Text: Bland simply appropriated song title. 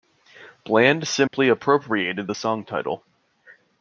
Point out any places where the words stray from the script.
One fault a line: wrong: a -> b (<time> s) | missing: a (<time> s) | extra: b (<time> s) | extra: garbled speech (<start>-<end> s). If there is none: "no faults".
extra: the (2.2 s)